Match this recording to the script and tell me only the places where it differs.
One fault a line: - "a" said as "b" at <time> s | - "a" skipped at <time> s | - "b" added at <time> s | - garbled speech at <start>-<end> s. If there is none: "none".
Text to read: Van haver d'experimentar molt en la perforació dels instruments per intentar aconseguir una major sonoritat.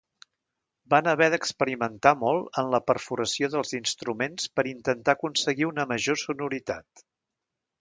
none